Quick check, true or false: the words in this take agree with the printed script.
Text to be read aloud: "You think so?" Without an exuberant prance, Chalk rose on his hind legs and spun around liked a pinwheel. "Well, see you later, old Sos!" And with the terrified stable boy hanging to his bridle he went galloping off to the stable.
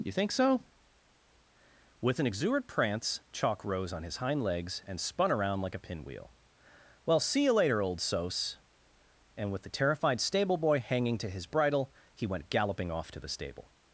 false